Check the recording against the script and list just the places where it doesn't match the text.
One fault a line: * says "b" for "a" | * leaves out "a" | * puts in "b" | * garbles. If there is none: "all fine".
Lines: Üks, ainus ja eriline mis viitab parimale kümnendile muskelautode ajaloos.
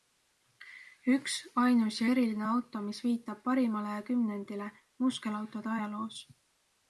* puts in "auto"